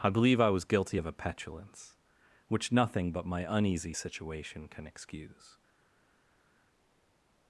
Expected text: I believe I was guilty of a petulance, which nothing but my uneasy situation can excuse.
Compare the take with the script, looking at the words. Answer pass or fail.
pass